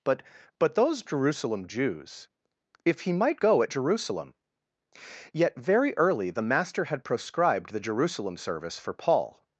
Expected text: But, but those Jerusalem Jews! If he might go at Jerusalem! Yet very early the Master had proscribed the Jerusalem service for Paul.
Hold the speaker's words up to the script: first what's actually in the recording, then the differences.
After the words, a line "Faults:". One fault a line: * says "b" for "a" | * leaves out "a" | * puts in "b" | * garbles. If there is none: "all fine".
But, but those Jerusalem Jews! If he might go at Jerusalem! Yet very early the Master had proscribed the Jerusalem service for Paul.
Faults:
all fine